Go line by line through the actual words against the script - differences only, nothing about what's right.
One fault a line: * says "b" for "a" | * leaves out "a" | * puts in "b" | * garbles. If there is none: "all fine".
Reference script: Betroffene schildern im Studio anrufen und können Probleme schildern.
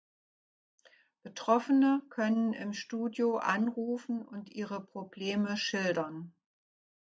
* says "können" for "schildern"
* says "ihre" for "können"